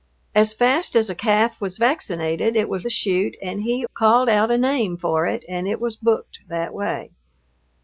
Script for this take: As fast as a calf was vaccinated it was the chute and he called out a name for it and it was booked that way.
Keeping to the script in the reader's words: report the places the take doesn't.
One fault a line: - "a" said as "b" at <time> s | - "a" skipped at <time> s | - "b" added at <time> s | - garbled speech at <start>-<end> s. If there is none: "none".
none